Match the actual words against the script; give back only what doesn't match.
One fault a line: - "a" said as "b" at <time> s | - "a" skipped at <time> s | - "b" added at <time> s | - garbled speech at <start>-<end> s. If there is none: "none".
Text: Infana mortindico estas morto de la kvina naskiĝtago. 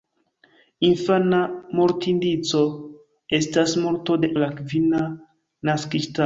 none